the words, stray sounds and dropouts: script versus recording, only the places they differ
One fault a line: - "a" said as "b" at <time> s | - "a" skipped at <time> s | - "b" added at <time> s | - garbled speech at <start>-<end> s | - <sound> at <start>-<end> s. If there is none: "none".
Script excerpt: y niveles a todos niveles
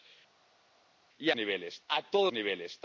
none